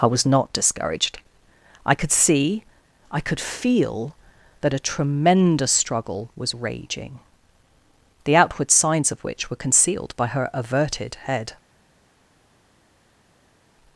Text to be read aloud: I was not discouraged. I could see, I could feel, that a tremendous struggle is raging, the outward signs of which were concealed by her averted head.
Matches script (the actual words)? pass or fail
fail